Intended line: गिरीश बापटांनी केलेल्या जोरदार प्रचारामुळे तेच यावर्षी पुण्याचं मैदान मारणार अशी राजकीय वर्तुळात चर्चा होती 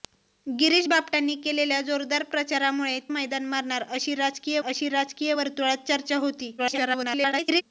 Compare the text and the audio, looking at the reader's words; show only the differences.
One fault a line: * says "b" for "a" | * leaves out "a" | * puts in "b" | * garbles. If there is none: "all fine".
* says "मैदान मारणार अशी राजकीय" for "तेच यावर्षी पुण्याचं मैदान मारणार"
* garbles